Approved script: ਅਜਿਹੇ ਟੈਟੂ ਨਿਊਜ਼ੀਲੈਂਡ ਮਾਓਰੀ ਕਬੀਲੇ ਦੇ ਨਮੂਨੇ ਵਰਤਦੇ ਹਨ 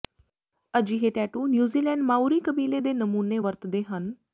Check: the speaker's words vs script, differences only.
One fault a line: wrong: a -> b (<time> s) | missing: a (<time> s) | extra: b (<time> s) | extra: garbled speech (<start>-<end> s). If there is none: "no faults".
no faults